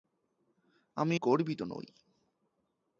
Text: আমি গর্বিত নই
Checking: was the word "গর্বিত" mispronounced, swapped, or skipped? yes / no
no